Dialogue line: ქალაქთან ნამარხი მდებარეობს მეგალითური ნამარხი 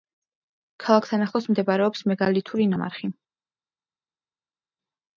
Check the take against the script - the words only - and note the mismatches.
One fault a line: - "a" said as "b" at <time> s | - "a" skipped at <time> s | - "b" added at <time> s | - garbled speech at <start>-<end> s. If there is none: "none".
- "ნამარხი" said as "ახლოს" at 1.3 s